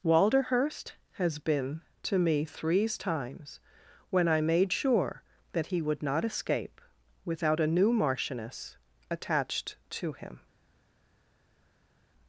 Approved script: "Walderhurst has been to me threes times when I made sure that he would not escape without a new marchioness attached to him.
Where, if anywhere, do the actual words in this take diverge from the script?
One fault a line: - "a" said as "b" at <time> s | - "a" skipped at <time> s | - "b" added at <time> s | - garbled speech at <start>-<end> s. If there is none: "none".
none